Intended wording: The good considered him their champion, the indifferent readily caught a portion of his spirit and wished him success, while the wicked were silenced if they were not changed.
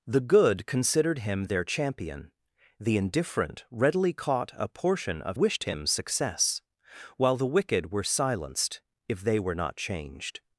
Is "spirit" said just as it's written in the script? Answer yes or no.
no